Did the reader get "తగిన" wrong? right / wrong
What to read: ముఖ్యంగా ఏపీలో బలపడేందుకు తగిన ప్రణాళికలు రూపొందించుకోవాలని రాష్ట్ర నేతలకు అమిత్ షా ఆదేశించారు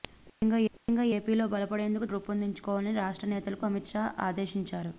wrong